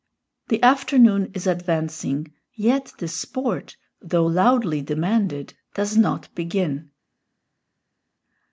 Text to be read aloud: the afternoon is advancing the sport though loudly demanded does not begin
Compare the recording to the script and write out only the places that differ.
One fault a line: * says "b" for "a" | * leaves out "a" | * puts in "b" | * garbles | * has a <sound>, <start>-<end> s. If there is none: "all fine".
* puts in "yet"